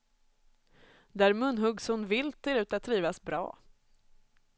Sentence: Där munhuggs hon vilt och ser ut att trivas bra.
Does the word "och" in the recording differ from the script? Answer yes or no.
yes